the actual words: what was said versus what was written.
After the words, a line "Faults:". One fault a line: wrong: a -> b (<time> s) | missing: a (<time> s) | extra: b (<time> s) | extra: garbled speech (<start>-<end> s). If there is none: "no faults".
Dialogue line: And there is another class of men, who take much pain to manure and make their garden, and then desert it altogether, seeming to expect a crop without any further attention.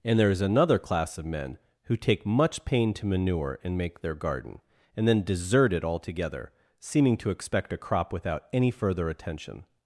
And there is another class of men, who take much pain to manure and make their garden, and then desert it altogether, seeming to expect a crop without any further attention.
Faults:
no faults